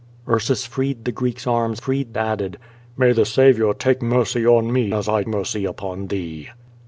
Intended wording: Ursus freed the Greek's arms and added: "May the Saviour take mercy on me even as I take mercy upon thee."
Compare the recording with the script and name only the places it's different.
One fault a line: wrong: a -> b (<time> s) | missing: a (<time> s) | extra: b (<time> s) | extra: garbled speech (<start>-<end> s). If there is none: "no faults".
wrong: and -> freed (1.8 s)
missing: even (4.9 s)
missing: take (5.2 s)